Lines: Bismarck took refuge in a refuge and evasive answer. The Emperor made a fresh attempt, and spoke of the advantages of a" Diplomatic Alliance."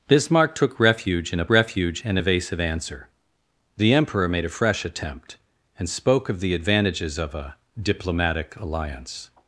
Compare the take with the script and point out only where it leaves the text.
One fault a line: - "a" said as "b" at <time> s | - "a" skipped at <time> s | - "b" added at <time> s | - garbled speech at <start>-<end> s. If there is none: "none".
none